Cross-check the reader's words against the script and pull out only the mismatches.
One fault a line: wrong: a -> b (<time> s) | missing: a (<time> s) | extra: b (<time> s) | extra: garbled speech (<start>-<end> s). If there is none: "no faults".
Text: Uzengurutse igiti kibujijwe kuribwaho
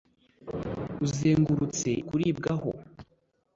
missing: igiti kibujijwe (1.9 s)